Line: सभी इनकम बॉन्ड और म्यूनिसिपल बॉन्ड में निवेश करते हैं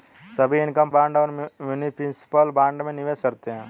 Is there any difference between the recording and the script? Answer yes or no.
no